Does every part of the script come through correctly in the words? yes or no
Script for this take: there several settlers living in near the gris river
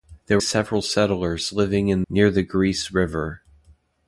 yes